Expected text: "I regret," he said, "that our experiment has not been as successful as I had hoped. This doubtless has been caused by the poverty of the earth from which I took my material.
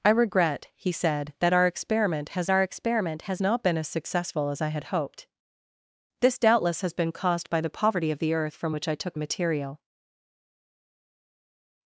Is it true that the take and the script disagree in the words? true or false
true